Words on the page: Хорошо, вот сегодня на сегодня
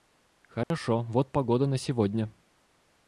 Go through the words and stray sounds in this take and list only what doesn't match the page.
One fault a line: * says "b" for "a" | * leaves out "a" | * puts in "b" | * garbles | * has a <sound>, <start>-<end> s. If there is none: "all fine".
* has a dropout, 0.6-0.7 s
* says "погода" for "сегодня"